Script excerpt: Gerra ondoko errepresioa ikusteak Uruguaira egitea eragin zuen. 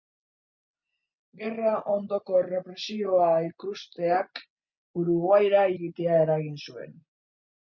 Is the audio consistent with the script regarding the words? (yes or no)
yes